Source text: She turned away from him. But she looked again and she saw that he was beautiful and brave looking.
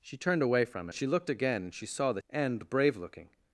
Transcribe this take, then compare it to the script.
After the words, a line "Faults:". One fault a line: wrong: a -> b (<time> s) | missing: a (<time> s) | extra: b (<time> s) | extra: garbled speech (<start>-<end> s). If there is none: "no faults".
She turned away from she looked again and she saw that and brave looking.
Faults:
missing: him But (0.9 s)
missing: he was beautiful (2.2 s)